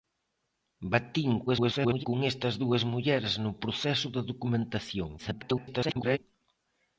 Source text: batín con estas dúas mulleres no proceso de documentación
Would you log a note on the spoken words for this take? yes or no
yes